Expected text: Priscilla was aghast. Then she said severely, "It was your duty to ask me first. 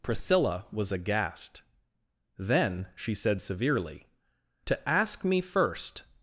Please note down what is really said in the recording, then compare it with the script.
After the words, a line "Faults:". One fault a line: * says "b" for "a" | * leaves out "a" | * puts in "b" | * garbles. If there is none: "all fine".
Priscilla was aghast. Then she said severely, "to ask me first.
Faults:
* leaves out "It was your duty"